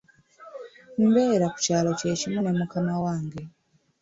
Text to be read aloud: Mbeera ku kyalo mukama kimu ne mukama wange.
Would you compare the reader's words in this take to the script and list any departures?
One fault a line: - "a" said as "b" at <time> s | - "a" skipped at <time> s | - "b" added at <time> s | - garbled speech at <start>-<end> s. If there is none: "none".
- "mukama" said as "kye" at 2.0 s